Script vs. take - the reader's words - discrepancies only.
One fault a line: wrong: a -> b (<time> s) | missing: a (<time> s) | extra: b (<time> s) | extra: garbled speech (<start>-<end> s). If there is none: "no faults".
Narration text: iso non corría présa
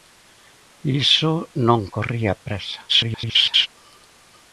extra: garbled speech (2.9-3.7 s)